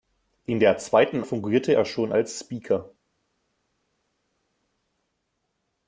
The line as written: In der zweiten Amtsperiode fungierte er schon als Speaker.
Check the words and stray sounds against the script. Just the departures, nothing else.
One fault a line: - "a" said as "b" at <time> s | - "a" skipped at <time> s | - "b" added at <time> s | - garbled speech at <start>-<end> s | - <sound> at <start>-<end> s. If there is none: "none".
- "Amtsperiode" skipped at 1.2 s